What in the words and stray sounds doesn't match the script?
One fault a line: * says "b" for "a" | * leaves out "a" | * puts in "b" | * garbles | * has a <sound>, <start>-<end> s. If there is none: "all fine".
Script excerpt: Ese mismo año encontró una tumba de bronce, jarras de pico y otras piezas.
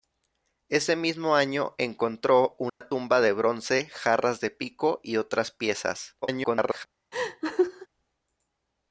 * has a dropout, 2.7-2.8 s
* garbles
* has a laugh, 7.1-7.9 s